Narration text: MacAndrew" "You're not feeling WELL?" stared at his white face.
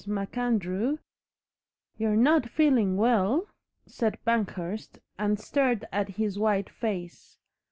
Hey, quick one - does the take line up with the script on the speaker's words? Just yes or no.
no